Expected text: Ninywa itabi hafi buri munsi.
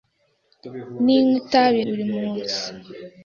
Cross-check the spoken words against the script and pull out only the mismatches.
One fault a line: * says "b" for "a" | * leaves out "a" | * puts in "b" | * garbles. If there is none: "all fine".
* leaves out "hafi"